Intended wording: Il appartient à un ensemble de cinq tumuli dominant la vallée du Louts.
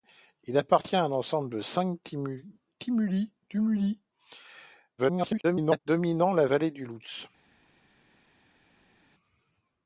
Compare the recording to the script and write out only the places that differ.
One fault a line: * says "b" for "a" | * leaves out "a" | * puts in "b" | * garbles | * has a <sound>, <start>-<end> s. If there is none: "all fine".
* garbles